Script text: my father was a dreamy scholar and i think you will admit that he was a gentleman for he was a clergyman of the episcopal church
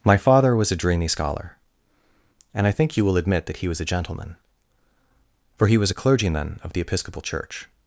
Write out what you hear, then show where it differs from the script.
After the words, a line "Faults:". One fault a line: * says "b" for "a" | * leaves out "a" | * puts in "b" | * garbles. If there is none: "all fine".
my father was a dreamy scholar and i think you will admit that he was a gentleman for he was a clergyman of the episcopal church
Faults:
all fine